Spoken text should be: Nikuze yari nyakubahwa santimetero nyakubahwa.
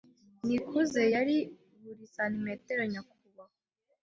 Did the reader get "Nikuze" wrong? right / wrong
right